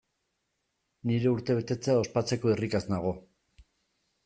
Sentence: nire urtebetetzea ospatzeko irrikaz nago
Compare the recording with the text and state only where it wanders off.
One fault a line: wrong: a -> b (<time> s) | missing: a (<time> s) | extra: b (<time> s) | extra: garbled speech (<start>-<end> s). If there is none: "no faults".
no faults